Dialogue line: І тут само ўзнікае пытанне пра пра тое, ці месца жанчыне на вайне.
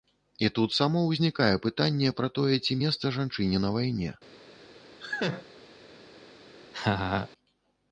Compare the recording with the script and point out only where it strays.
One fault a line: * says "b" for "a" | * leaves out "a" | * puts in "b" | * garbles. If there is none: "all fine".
* leaves out "пра"